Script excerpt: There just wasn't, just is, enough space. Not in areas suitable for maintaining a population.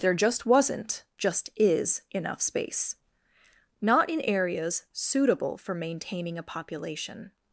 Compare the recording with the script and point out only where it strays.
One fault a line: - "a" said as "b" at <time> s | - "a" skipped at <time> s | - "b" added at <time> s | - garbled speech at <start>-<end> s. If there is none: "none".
none